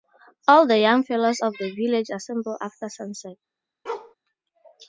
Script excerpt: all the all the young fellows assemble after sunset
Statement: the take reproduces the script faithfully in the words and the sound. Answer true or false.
false